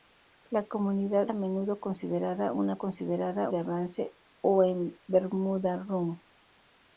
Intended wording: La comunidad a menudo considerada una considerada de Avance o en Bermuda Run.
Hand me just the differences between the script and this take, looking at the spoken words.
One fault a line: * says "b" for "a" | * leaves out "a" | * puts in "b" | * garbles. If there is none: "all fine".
all fine